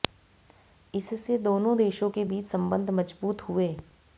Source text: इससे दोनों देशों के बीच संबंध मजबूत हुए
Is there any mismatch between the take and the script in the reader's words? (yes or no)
no